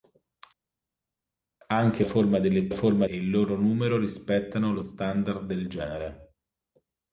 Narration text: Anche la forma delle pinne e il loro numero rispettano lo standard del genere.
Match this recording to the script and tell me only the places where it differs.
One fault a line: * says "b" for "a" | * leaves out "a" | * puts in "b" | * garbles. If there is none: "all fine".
* leaves out "la"
* says "forma" for "pinne"